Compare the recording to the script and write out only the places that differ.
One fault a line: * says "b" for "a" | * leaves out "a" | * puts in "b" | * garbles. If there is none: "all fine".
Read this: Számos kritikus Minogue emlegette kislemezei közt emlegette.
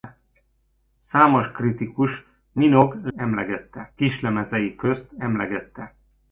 all fine